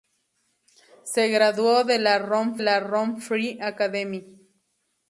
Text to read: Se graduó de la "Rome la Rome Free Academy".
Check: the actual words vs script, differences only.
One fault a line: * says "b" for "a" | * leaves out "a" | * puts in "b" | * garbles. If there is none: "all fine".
all fine